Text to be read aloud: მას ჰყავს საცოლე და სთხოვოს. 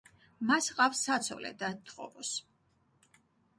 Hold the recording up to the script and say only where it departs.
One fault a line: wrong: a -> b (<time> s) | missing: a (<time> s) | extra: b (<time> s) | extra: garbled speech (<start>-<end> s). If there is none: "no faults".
no faults